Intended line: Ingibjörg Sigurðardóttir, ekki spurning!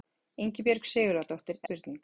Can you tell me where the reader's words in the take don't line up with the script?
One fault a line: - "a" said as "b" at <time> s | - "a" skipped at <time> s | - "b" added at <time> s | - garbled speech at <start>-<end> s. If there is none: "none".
- "ekki" skipped at 1.6 s